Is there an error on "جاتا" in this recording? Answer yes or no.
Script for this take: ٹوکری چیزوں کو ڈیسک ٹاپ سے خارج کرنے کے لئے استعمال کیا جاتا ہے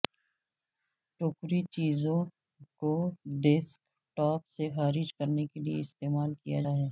yes